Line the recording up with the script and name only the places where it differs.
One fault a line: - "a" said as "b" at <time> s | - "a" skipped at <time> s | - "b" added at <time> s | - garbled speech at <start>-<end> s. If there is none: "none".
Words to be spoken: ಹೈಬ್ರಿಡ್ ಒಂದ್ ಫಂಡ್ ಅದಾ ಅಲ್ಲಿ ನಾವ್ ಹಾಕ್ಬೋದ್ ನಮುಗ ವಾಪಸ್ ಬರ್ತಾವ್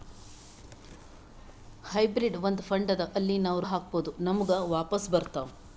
none